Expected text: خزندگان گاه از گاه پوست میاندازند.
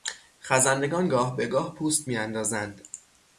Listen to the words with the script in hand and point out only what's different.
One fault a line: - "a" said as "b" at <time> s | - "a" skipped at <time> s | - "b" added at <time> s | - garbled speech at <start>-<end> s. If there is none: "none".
- "از" said as "به" at 1.4 s